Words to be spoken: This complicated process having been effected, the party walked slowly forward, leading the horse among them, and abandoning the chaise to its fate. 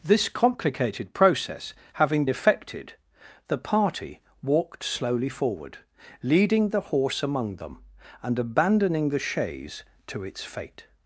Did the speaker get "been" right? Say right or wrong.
wrong